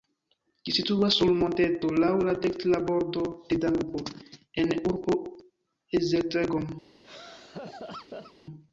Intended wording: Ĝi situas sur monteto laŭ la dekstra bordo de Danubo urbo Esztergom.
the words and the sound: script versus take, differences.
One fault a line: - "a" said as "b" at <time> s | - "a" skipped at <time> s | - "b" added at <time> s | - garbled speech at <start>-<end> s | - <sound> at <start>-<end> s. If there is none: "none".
- "en" added at 4.7 s
- laugh at 7.0-8.3 s